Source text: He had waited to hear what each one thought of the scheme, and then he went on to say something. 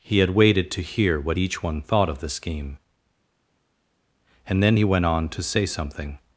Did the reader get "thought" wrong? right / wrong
right